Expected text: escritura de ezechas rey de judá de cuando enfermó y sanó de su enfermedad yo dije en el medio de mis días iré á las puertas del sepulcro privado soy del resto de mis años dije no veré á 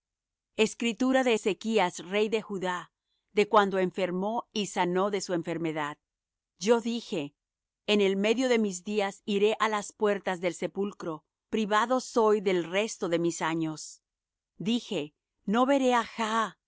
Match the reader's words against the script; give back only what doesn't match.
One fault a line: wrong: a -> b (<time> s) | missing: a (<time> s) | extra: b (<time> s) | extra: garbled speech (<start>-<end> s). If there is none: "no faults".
no faults